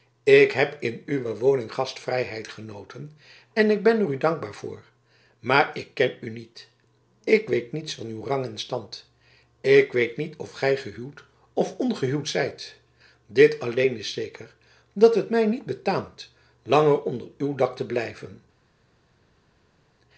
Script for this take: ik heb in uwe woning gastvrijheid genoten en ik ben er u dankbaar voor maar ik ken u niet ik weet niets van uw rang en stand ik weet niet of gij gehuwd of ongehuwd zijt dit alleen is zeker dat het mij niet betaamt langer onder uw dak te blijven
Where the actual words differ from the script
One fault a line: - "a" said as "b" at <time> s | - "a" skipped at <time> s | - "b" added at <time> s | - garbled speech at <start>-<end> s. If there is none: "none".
none